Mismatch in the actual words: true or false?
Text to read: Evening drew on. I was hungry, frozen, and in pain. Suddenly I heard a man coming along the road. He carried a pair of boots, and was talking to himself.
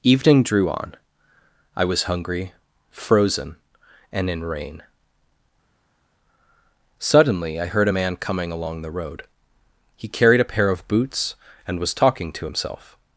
true